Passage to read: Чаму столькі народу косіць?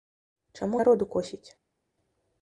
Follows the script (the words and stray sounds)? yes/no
no